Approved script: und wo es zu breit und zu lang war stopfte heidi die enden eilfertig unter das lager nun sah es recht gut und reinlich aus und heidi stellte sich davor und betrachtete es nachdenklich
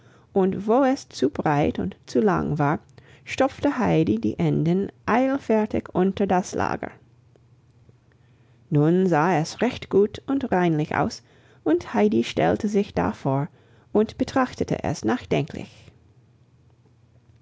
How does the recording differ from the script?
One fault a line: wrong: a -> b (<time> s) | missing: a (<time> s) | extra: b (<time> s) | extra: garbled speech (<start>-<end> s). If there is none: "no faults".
no faults